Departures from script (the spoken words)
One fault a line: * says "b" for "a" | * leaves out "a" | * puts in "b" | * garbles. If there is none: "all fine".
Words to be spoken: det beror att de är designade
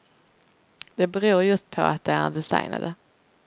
* puts in "just på"